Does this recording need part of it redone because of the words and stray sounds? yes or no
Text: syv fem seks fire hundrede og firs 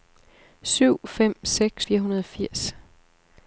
no